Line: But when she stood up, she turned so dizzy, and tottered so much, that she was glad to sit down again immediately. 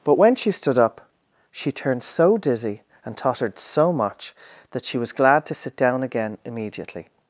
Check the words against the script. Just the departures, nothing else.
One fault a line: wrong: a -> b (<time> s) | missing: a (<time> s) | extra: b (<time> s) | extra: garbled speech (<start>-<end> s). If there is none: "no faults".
no faults